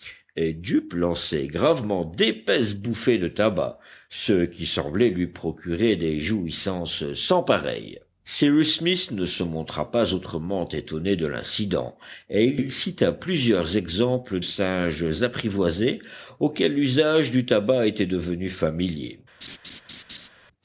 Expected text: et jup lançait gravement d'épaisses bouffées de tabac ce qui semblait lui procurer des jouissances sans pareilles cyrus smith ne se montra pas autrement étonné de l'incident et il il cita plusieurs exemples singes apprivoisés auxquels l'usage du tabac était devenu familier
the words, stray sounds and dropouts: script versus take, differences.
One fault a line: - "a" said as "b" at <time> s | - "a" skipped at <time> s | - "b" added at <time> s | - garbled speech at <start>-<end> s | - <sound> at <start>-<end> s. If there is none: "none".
- laugh at 19.4-20.3 s